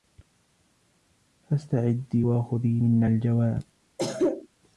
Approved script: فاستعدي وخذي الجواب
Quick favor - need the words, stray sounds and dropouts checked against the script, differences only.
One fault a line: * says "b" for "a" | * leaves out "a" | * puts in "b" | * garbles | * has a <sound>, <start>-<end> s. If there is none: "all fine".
* puts in "منا"
* has a cough, 4.0-4.5 s